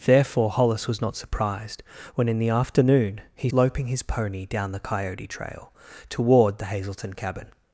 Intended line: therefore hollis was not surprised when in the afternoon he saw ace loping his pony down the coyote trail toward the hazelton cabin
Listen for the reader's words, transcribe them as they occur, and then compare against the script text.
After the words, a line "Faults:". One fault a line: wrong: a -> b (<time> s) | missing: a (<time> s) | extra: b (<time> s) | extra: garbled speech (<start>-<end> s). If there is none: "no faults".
therefore hollis was not surprised when in the afternoon he loping his pony down the coyote trail toward the hazelton cabin
Faults:
missing: saw ace (3.5 s)